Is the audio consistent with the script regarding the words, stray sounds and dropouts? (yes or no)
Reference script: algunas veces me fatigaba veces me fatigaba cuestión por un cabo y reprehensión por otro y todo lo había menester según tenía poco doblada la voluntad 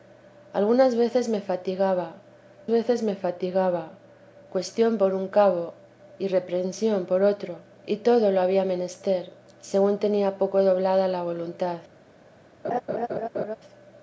no